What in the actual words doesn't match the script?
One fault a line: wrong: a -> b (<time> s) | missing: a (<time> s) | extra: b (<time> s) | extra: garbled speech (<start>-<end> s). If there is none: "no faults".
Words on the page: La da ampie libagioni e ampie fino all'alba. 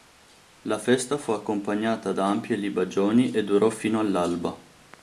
extra: festa fu accompagnata (0.8 s)
wrong: ampie -> durò (3.4 s)